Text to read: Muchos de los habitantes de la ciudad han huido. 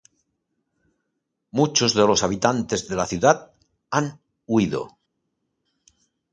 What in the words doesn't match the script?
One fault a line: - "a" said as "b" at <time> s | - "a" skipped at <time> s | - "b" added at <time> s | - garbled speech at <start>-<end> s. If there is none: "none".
none